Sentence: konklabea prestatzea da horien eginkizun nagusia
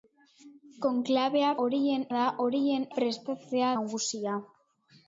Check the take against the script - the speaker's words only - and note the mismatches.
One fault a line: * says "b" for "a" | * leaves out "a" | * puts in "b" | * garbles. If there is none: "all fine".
* says "horien" for "prestatzea"
* says "prestatzea" for "eginkizun"